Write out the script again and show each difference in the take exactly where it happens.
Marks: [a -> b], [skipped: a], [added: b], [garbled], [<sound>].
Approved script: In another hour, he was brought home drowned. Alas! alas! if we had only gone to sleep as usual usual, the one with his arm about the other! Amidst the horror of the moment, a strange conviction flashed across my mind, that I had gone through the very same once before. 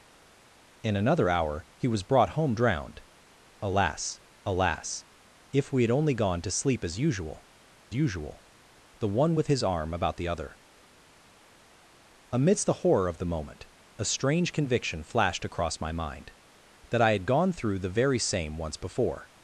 In another hour, he was brought home drowned. Alas! alas! if we had only gone to sleep as usual usual, the one with his arm about the other! Amidst the horror of the moment, a strange conviction flashed across my mind, that I had gone through the very same once before.